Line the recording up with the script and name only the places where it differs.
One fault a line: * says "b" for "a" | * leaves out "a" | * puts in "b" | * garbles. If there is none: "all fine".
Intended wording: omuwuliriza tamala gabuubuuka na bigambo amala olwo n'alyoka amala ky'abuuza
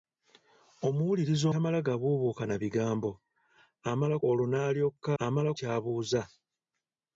all fine